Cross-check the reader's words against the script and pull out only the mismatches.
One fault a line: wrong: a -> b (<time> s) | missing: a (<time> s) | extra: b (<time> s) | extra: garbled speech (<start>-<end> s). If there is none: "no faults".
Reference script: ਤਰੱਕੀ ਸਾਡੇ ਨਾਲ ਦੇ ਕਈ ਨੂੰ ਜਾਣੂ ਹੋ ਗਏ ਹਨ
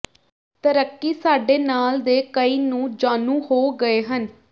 no faults